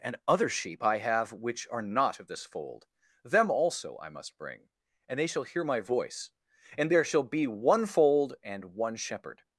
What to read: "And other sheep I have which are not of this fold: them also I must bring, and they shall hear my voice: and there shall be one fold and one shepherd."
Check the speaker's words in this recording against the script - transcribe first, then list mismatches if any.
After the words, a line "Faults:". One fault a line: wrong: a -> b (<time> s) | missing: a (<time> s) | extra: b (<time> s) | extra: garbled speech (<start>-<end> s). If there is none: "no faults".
"And other sheep I have which are not of this fold: them also I must bring, and they shall hear my voice: and there shall be one fold and one shepherd."
Faults:
no faults